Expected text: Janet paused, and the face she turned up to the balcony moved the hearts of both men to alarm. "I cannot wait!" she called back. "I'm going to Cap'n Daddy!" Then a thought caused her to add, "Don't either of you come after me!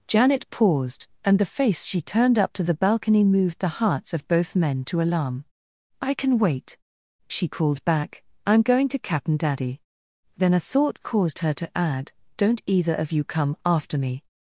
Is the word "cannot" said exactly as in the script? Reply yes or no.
no